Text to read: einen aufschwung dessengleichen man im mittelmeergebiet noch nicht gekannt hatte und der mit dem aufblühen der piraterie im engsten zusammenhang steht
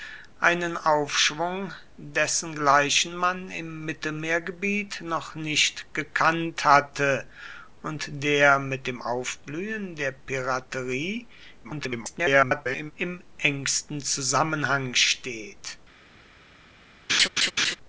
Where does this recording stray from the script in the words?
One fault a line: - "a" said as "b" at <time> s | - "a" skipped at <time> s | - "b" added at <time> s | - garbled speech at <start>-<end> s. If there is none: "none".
- garbled speech at 11.6-12.9 s